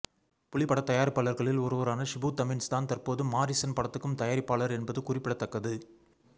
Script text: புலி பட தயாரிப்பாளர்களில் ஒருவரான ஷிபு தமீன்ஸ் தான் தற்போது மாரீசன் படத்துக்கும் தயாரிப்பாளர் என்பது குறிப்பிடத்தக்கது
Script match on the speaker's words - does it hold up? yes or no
yes